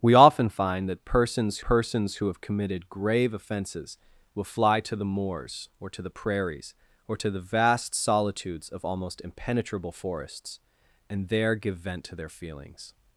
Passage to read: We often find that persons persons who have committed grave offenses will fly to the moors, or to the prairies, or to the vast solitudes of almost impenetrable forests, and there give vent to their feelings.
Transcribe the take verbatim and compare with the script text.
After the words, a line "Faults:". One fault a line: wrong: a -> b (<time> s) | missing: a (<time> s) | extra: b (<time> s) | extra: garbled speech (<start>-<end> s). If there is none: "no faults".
We often find that persons persons who have committed grave offenses will fly to the moors, or to the prairies, or to the vast solitudes of almost impenetrable forests, and there give vent to their feelings.
Faults:
no faults